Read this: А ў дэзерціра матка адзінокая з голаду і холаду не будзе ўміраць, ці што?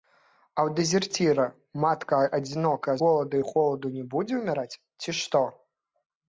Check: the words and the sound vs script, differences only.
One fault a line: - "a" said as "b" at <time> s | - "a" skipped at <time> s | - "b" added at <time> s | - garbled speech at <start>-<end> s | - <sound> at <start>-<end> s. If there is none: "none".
- "з" skipped at 3.0 s